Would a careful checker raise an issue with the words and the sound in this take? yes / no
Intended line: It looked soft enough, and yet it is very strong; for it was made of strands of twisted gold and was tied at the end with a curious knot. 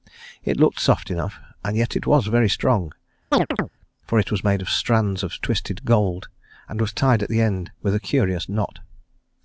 yes